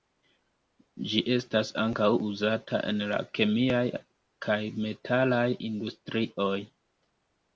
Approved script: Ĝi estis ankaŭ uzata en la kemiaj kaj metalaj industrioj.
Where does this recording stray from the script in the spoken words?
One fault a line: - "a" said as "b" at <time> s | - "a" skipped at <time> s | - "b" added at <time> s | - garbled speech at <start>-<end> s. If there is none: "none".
- "estis" said as "estas" at 1.3 s